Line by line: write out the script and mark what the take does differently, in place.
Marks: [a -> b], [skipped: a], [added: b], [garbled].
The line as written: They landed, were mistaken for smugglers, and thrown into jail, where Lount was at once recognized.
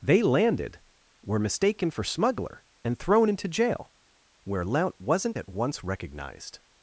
They landed, were mistaken for [smugglers, -> smuggler] and thrown into jail, where Lount [was -> wasn't] at once recognized.